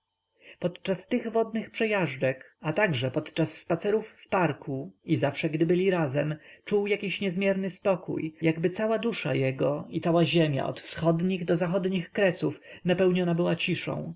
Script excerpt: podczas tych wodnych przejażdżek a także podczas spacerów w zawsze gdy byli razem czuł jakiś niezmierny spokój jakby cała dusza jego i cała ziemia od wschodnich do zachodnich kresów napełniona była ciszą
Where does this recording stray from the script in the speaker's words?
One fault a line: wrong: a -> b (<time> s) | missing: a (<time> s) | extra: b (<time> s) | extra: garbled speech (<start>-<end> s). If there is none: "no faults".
extra: parku i (4.3 s)